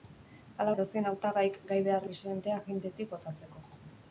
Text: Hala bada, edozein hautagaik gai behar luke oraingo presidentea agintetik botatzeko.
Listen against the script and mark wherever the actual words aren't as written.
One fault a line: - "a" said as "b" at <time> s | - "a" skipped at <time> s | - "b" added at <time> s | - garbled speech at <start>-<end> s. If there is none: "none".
- "bada" skipped at 0.7 s
- "luke oraingo" skipped at 2.1 s